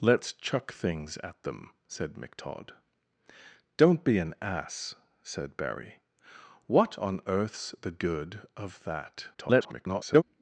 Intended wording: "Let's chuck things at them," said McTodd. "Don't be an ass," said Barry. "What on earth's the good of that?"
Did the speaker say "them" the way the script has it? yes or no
yes